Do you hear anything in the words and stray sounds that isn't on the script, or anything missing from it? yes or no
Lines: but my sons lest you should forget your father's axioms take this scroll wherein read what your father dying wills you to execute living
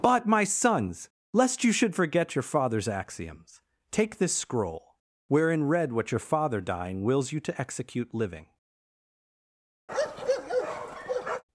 yes